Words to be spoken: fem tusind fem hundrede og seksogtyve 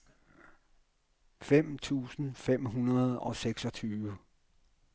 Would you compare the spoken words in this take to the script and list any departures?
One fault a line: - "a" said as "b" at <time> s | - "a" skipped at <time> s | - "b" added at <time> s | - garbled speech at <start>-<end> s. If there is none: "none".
none